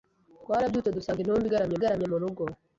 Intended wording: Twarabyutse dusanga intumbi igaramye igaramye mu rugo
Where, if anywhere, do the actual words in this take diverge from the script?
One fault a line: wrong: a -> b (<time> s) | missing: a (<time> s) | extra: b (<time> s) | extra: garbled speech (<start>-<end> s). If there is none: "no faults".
no faults